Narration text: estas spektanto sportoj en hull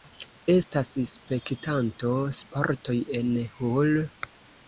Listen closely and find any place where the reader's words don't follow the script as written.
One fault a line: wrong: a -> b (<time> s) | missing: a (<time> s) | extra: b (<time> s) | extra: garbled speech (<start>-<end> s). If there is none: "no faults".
no faults